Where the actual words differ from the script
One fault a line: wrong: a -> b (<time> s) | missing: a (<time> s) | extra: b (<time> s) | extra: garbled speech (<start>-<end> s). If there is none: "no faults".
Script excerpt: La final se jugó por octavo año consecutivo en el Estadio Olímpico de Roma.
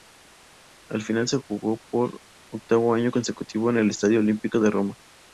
no faults